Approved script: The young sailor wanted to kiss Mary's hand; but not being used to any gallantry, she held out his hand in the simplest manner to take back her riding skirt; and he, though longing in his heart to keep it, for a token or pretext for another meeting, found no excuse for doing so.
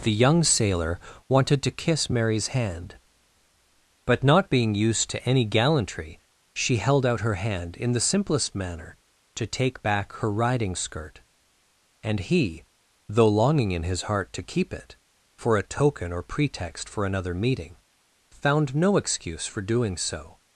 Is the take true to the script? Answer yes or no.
no